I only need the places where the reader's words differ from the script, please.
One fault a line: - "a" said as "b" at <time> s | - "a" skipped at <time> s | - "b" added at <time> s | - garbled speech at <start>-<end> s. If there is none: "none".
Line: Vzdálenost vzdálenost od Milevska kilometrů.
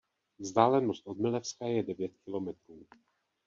- "vzdálenost" skipped at 1.1 s
- "je devět" added at 1.6 s